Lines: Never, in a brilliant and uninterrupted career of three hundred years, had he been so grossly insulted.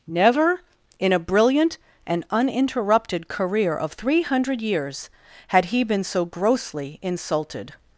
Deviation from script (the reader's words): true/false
false